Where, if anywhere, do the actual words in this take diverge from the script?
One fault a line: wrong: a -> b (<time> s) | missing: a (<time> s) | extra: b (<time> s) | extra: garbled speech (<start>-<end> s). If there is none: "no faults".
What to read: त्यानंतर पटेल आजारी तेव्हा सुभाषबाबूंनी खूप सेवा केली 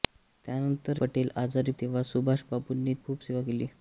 no faults